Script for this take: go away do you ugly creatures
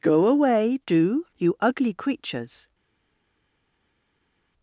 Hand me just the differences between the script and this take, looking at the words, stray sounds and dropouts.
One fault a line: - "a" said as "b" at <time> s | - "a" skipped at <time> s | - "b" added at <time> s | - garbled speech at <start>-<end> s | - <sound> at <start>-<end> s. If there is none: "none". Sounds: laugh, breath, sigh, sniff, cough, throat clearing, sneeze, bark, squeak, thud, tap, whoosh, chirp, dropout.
none